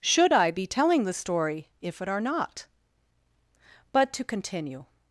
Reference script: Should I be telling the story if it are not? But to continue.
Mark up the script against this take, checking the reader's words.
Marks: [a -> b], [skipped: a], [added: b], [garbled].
Should I be telling the story if it are not? But to continue.